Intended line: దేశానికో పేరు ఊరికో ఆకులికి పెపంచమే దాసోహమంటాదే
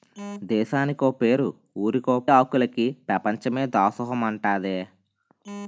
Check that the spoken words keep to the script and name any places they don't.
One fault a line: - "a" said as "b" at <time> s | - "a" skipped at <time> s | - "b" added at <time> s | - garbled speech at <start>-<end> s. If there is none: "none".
none